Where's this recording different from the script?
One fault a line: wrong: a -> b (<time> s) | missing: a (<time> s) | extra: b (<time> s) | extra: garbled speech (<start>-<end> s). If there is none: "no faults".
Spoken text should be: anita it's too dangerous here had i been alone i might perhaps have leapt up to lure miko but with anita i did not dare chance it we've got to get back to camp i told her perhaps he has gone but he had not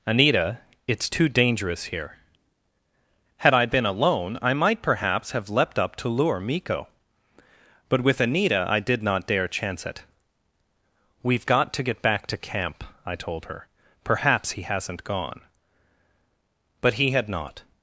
wrong: has -> hasn't (14.6 s)